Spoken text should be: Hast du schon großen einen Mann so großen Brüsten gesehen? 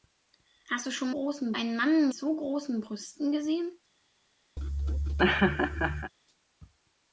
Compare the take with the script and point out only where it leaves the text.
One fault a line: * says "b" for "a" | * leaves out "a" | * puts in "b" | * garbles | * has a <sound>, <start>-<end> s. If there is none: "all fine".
* has a laugh, 4.6-6.1 s